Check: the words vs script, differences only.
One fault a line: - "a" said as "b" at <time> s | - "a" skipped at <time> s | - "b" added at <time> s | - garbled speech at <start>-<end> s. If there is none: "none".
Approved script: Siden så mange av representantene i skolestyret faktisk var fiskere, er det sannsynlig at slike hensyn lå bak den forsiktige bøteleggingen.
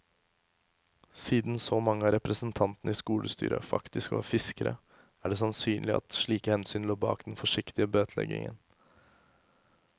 none